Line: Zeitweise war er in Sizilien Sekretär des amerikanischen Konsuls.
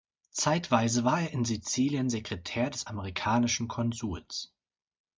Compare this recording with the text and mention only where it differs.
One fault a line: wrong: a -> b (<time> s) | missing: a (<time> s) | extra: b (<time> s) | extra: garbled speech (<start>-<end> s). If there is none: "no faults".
no faults